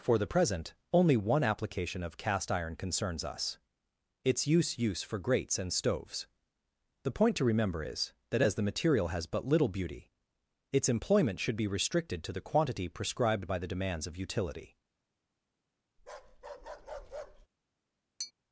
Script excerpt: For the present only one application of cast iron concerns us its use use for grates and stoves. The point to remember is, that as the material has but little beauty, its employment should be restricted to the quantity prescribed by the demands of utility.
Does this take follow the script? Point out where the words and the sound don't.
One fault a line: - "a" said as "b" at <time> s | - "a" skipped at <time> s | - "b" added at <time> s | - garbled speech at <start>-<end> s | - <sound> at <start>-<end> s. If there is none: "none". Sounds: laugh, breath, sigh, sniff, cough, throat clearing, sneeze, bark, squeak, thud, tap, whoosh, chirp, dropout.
- bark at 16.0-17.5 s
- tap at 18.2-18.3 s